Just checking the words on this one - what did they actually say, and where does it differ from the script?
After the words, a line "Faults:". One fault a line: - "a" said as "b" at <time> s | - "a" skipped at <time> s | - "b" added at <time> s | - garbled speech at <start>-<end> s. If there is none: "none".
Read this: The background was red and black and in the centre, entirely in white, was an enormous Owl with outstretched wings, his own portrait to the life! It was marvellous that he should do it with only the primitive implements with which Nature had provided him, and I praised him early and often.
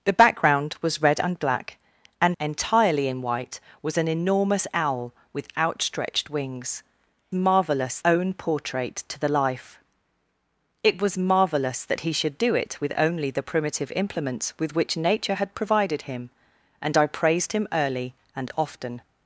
The background was red and black and entirely in white, was an enormous Owl with outstretched wings, marvellous own portrait to the life! It was marvellous that he should do it with only the primitive implements with which Nature had provided him, and I praised him early and often.
Faults:
- "in the centre" skipped at 2.4 s
- "his" said as "marvellous" at 7.3 s